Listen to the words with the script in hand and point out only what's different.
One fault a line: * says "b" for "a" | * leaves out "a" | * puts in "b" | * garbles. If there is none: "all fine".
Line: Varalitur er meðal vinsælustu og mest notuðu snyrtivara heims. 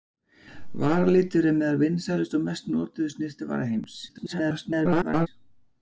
* garbles